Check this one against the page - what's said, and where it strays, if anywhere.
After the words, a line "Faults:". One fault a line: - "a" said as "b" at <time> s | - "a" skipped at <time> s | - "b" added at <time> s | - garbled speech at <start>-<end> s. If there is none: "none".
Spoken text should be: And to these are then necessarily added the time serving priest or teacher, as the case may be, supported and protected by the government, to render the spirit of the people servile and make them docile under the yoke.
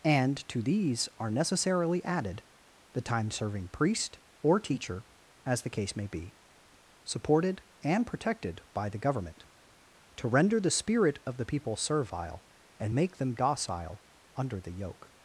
And to these are necessarily added the time serving priest or teacher, as the case may be, supported and protected by the government, to render the spirit of the people servile and make them docile under the yoke.
Faults:
- "then" skipped at 1.3 s